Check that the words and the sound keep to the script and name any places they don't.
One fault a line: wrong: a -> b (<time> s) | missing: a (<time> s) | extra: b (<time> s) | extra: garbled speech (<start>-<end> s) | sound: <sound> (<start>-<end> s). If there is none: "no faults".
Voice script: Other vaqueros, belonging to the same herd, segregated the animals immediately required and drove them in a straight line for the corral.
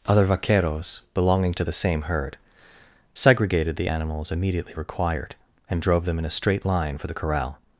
no faults